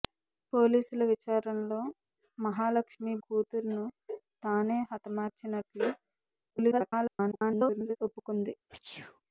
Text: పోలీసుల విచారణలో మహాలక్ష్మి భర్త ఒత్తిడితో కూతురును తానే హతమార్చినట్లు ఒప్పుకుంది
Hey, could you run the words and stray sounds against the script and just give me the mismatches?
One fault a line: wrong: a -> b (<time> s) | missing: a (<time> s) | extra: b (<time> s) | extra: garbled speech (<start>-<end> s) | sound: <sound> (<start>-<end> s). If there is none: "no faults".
missing: భర్త ఒత్తిడితో (3.1 s)
extra: garbled speech (6.5-8.0 s)
sound: sneeze (8.7-9.2 s)